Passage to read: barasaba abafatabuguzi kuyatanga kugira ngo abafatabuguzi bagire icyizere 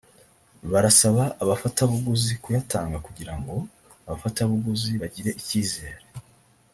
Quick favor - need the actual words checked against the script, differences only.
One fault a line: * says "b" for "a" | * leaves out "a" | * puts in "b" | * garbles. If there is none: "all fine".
all fine